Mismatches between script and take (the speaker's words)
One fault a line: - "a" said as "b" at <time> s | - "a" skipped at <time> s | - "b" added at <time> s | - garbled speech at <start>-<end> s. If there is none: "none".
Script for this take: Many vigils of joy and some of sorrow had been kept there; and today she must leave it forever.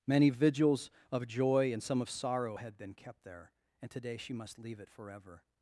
none